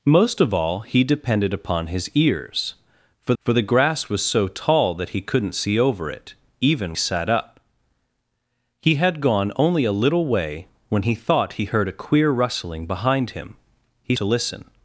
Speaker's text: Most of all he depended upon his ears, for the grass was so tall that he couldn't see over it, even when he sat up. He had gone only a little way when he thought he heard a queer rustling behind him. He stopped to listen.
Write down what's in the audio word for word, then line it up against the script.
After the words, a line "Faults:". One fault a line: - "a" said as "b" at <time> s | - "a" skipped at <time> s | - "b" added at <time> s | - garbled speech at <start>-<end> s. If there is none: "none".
Most of all he depended upon his ears, for for the grass was so tall that he couldn't see over it, even sat up. He had gone only a little way when he thought he heard a queer rustling behind him. He to listen.
Faults:
- "for" added at 3.4 s
- "when he" skipped at 7.0 s
- "stopped" skipped at 14.2 s